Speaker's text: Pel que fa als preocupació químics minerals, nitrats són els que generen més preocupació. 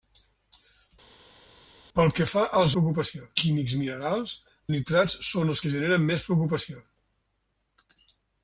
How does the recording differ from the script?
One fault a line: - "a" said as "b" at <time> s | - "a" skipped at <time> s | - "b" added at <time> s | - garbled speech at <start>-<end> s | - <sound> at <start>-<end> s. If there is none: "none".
none